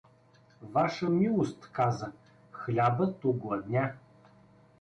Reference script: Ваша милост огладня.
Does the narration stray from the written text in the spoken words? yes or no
yes